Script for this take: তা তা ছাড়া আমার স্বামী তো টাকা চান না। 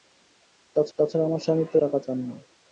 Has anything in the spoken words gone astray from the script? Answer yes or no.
no